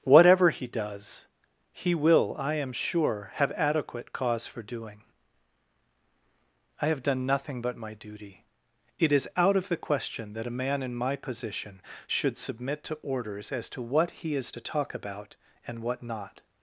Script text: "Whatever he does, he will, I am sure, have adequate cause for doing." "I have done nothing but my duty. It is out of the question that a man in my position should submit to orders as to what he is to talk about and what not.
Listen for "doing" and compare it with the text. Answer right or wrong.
right